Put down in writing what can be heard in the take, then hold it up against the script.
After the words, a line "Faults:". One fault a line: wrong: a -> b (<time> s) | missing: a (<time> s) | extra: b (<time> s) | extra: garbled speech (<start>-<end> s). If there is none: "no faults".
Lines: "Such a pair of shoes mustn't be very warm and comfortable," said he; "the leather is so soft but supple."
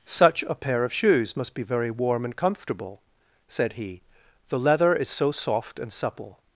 "Such a pair of shoes must be very warm and comfortable," said he; "the leather is so soft and supple."
Faults:
wrong: mustn't -> must (1.4 s)
wrong: but -> and (5.8 s)